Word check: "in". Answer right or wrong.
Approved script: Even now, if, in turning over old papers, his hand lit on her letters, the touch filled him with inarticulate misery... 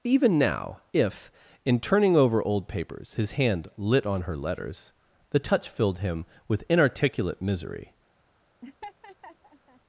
right